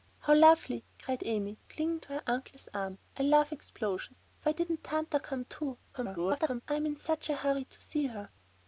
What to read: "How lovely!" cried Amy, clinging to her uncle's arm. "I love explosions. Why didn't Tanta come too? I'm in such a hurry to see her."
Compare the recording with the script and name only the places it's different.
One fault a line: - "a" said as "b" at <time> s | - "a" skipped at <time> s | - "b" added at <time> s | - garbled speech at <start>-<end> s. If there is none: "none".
- garbled speech at 5.9-6.6 s